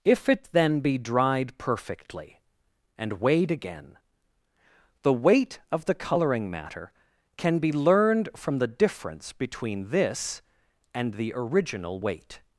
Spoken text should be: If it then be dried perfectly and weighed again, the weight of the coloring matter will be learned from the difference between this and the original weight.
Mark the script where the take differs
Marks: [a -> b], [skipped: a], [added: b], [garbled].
If it then be dried perfectly and weighed again, the weight of the coloring matter [will -> can] be learned from the difference between this and the original weight.